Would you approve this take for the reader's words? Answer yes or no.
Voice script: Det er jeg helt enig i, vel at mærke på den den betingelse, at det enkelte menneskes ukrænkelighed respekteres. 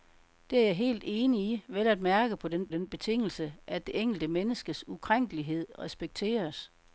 yes